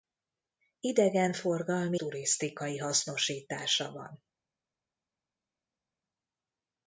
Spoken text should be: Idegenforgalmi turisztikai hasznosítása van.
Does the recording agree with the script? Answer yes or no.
yes